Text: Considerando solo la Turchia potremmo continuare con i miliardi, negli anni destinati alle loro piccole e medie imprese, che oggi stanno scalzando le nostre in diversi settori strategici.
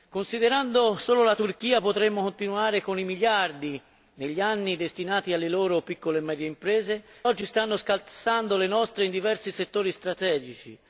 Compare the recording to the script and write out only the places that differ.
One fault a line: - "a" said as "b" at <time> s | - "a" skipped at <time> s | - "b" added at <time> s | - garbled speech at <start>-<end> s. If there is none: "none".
- "che" skipped at 7.0 s